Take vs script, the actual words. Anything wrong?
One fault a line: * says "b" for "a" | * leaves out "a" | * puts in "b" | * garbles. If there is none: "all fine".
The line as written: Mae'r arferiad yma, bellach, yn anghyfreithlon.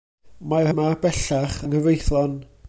* leaves out "arferiad"
* leaves out "yn"